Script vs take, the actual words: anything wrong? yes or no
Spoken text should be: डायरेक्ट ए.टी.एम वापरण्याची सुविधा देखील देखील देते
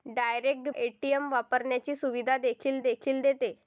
no